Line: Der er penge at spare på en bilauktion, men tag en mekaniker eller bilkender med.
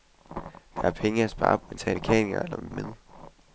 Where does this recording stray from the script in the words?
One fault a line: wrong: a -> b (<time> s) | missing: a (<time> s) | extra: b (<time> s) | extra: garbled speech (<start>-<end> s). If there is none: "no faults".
missing: på en bilauktion (1.6 s)
missing: en (1.9 s)
missing: bilkender (2.7 s)